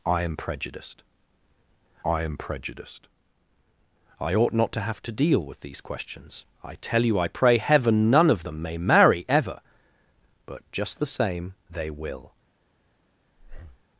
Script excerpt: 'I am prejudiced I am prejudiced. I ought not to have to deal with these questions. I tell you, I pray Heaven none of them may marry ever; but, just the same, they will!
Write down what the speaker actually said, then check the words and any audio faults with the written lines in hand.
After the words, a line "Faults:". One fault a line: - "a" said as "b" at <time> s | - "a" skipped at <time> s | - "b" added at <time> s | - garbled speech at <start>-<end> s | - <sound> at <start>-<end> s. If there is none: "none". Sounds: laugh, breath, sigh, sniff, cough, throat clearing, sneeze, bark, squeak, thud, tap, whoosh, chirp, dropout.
'I am prejudiced I am prejudiced. I ought not to have to deal with these questions. I tell you, I pray Heaven none of them may marry ever; but, just the same, they will!
Faults:
- breath at 13.4-13.8 s